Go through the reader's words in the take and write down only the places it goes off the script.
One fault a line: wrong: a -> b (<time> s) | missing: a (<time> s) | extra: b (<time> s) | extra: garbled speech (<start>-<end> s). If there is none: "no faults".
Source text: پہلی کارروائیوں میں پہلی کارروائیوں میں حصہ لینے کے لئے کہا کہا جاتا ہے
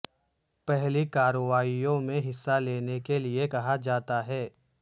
missing: پہلی کارروائیوں میں (2.2 s)
missing: کہا (3.7 s)